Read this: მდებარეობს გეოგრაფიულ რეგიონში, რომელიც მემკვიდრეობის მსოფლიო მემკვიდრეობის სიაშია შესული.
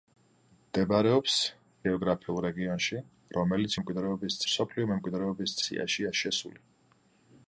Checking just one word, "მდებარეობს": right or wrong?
right